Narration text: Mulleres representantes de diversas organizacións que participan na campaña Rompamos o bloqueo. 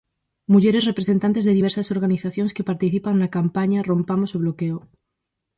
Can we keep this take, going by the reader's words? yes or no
yes